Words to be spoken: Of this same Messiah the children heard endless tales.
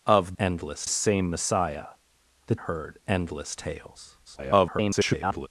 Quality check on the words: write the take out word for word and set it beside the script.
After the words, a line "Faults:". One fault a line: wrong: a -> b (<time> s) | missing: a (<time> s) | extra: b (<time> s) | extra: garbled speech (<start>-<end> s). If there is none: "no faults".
Of endless same Messiah the heard endless tales. [garbled]
Faults:
wrong: this -> endless (0.4 s)
missing: children (2.5 s)
extra: garbled speech (4.2-5.5 s)